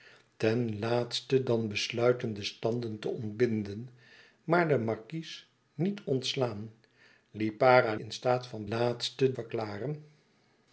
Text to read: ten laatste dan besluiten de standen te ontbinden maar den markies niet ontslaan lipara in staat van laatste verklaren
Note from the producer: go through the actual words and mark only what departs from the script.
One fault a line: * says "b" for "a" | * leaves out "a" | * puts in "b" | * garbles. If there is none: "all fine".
all fine